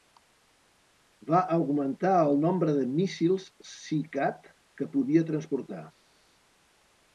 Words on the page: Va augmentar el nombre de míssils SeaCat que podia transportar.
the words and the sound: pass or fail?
pass